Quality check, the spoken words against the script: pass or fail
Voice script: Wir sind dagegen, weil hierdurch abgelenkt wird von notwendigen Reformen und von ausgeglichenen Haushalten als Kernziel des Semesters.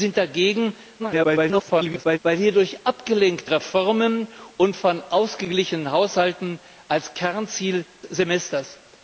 fail